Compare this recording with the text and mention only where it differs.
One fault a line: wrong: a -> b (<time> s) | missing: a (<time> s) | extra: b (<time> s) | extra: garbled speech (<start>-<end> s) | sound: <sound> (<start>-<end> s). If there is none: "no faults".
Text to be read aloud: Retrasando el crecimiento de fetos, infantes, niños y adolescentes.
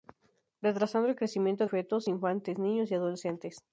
missing: de (1.7 s)